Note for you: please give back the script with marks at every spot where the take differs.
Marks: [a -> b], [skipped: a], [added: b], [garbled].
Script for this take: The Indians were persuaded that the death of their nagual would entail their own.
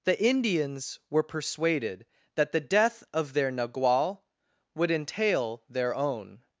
The Indians were persuaded that the death of their nagual would entail their own.